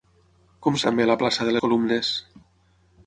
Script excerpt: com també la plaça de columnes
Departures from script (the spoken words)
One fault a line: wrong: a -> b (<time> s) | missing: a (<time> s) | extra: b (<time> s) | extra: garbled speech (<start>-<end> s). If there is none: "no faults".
no faults